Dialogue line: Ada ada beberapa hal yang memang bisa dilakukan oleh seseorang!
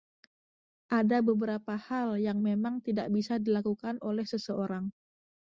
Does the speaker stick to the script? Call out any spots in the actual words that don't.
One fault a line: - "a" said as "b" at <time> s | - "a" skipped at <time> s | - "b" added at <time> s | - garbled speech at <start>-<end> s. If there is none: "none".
- "ada" skipped at 1.2 s
- "tidak" added at 2.8 s